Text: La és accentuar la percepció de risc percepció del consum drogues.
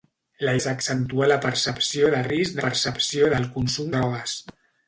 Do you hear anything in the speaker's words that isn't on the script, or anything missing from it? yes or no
no